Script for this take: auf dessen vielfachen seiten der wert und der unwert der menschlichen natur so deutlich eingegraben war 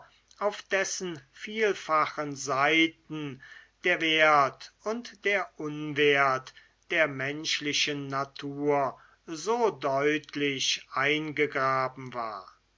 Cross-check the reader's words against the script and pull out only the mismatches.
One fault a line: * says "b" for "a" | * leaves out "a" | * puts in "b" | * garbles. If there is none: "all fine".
all fine